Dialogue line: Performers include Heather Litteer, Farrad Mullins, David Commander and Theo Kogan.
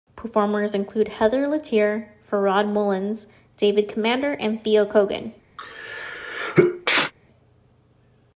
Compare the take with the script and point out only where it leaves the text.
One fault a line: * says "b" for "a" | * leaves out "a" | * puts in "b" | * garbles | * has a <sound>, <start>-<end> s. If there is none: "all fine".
* has a sneeze, 5.6-7.1 s